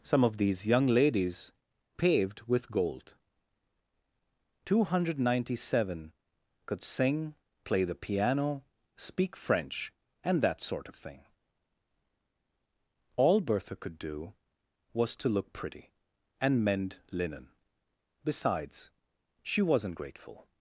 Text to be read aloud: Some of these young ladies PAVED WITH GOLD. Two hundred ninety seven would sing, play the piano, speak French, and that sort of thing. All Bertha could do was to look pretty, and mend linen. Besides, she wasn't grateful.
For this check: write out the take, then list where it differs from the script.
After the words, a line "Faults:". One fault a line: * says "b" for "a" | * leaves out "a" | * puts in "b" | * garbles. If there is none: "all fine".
Some of these young ladies PAVED WITH GOLD. Two hundred ninety seven could sing, play the piano, speak French, and that sort of thing. All Bertha could do was to look pretty, and mend linen. Besides, she wasn't grateful.
Faults:
* says "could" for "would"